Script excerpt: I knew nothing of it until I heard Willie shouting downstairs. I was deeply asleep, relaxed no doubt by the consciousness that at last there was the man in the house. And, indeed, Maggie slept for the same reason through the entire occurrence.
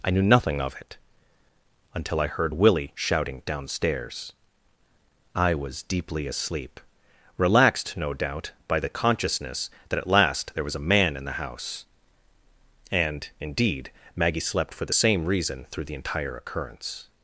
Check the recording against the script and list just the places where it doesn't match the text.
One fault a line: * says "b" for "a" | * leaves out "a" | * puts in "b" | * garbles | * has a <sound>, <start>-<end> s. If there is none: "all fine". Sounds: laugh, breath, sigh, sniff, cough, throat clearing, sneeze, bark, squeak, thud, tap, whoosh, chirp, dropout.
* says "a" for "the"